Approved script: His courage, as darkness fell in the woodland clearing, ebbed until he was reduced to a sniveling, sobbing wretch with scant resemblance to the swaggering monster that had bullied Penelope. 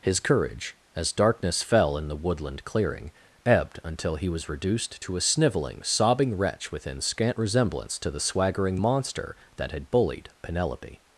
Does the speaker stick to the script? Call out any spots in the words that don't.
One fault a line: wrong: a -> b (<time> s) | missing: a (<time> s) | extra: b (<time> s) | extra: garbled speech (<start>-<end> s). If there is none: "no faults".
wrong: with -> within (6.7 s)